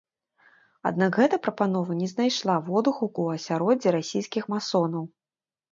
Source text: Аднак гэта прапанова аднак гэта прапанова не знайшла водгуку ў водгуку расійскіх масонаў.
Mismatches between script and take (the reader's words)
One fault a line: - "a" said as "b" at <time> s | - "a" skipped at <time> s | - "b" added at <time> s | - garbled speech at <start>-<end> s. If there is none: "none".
- "аднак гэта прапанова" skipped at 2.0 s
- "водгуку" said as "асяроддзі" at 3.4 s